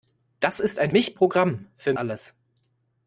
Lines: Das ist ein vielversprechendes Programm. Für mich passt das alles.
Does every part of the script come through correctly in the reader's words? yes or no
no